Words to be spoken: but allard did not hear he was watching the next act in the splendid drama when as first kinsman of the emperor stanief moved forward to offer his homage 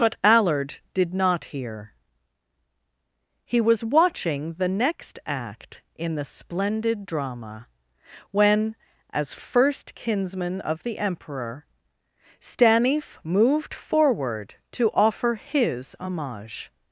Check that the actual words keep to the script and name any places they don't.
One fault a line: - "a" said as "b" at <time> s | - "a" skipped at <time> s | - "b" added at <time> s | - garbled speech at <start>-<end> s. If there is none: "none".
none